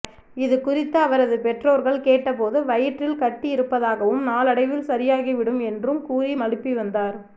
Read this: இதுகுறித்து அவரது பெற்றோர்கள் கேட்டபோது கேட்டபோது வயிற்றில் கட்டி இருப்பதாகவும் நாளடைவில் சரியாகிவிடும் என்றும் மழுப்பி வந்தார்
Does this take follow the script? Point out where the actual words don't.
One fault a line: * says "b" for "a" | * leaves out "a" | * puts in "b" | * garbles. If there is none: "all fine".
* leaves out "கேட்டபோது"
* puts in "கூறி"